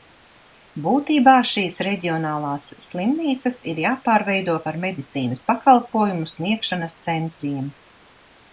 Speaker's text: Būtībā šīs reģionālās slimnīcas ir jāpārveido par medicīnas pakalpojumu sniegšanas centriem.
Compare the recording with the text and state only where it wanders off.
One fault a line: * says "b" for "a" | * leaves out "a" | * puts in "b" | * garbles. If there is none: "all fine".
all fine